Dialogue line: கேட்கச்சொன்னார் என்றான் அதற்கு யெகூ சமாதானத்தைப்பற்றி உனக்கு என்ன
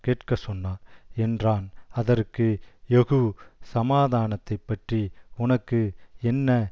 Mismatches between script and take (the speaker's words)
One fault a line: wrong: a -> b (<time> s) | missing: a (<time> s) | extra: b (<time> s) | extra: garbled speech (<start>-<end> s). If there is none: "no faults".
no faults